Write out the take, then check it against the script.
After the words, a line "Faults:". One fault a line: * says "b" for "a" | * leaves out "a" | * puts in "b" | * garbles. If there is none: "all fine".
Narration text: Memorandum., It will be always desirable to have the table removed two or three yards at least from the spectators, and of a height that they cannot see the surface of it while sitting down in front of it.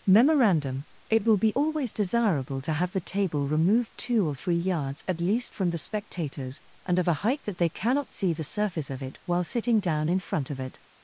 Memorandum., It will be always desirable to have the table removed two or three yards at least from the spectators, and of a height that they cannot see the surface of it while sitting down in front of it.
Faults:
all fine